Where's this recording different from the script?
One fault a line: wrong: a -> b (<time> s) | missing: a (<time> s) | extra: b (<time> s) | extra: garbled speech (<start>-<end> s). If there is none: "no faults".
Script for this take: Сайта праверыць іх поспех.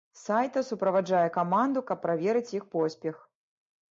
extra: суправаджае каманду каб (0.7 s)